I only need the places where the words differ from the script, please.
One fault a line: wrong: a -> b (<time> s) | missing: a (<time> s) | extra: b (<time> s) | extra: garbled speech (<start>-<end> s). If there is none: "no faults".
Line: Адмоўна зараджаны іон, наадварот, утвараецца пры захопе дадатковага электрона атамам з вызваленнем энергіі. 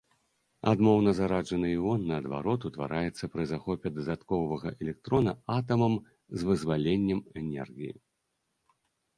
no faults